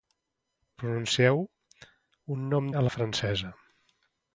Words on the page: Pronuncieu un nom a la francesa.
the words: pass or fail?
pass